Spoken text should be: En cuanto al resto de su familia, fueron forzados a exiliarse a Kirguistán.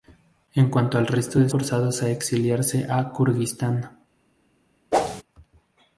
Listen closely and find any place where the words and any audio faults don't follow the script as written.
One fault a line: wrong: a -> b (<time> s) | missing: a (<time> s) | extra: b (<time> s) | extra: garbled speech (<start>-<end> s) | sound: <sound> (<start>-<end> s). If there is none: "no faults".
missing: su familia fueron (1.5 s)
sound: whoosh (4.9-5.2 s)